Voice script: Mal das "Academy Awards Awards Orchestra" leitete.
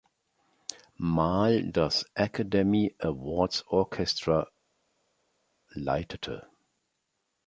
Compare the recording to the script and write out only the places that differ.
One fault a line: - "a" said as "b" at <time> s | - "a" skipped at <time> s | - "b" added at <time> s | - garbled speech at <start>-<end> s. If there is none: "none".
- "Awards" skipped at 3.7 s